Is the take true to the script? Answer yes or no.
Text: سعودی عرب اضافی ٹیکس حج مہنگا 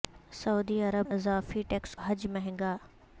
yes